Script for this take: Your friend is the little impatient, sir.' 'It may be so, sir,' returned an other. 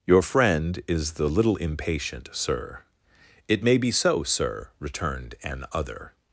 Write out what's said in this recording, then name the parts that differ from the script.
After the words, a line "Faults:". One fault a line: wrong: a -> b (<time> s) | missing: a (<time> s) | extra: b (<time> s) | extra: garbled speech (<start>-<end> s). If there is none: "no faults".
Your friend is the little impatient, sir.' 'It may be so, sir,' returned an other.
Faults:
no faults